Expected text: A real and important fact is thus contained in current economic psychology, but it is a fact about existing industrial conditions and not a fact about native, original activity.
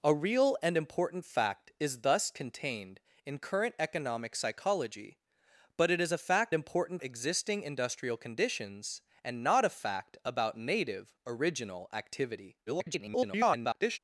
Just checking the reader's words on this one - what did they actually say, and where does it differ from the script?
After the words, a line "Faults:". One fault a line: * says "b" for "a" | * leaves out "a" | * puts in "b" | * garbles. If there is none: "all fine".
A real and important fact is thus contained in current economic psychology, but it is a fact important existing industrial conditions and not a fact about native, original activity. [garbled]
Faults:
* says "important" for "about"
* garbles